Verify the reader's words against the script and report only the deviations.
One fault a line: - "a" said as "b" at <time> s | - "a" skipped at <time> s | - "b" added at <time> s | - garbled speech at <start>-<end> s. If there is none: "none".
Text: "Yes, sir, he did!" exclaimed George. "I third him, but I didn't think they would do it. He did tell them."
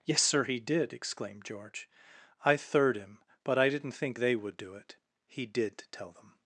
none